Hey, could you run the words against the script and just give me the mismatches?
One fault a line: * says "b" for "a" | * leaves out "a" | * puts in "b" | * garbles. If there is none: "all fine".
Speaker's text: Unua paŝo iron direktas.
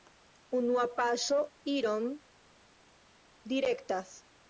all fine